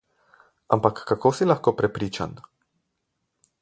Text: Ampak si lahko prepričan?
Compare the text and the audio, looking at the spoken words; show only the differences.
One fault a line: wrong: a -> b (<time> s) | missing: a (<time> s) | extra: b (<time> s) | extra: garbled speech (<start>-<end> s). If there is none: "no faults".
extra: kako (1.0 s)